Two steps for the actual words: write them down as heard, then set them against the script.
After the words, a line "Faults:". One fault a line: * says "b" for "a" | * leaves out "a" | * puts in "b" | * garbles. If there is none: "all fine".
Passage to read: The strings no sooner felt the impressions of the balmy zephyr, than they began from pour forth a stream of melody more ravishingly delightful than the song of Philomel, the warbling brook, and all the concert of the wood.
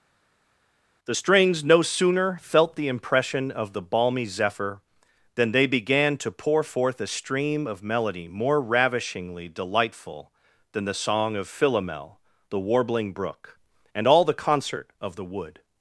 The strings no sooner felt the impression of the balmy zephyr, than they began to pour forth a stream of melody more ravishingly delightful than the song of Philomel, the warbling brook, and all the concert of the wood.
Faults:
* says "impression" for "impressions"
* says "to" for "from"